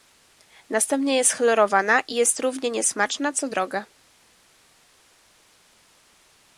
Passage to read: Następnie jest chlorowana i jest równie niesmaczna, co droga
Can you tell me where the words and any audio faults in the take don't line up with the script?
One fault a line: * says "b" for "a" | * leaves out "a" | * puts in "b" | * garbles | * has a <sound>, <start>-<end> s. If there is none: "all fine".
all fine